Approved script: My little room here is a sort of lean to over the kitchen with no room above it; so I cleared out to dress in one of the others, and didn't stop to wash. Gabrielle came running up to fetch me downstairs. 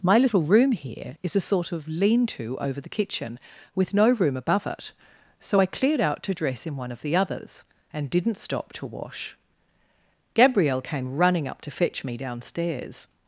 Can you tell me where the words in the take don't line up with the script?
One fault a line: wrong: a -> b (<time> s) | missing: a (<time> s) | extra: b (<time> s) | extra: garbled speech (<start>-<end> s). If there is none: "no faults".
no faults